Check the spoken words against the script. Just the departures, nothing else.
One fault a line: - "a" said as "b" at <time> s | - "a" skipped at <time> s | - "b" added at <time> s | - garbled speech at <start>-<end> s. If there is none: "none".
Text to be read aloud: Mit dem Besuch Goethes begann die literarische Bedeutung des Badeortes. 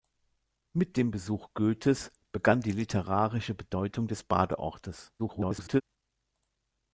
- garbled speech at 5.2-5.8 s